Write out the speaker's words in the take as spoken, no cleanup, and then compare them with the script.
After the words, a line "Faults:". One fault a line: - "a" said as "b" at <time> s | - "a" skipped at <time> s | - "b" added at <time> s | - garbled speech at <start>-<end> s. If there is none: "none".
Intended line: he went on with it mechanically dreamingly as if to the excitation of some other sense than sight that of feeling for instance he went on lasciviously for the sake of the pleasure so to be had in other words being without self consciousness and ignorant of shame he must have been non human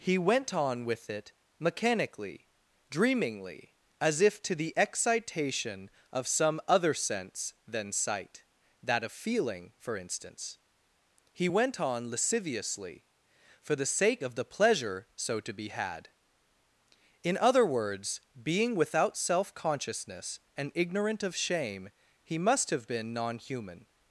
he went on with it mechanically dreamingly as if to the excitation of some other sense than sight that of feeling for instance he went on lasciviously for the sake of the pleasure so to be had in other words being without self consciousness and ignorant of shame he must have been non human
Faults:
none